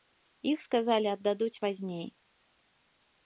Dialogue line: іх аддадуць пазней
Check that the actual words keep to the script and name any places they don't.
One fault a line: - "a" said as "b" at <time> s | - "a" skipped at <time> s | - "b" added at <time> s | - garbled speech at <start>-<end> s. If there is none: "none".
- "сказалі" added at 0.7 s